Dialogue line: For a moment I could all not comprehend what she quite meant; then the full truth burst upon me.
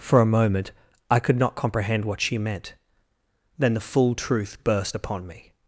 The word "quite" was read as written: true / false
false